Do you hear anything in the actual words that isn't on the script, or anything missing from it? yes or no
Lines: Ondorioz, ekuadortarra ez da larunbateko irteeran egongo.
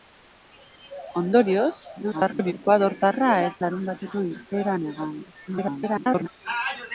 yes